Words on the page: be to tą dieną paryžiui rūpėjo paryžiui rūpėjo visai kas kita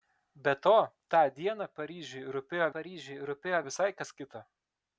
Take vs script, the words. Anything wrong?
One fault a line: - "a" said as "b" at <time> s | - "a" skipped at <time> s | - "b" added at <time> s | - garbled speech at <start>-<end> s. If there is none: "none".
none